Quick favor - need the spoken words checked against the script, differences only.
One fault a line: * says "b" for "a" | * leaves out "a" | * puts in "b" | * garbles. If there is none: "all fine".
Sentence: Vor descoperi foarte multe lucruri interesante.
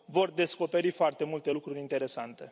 all fine